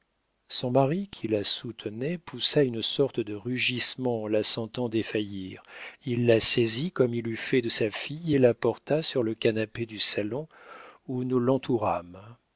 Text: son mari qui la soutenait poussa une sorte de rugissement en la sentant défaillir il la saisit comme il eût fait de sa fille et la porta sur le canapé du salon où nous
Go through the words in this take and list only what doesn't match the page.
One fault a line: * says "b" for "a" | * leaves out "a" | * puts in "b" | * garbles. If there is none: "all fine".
all fine